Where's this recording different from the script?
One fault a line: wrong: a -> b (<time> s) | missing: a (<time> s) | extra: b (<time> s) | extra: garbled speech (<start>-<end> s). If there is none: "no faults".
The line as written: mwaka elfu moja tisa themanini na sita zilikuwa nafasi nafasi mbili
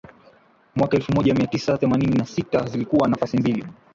extra: mia (1.3 s)
missing: nafasi (3.4 s)